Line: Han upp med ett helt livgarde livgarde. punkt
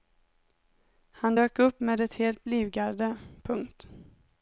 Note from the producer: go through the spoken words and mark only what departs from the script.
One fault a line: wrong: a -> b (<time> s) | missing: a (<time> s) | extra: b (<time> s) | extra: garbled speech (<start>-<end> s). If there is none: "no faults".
extra: dök (1.3 s)
missing: livgarde (3.2 s)